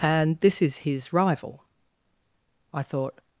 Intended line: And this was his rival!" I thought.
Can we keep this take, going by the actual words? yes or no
no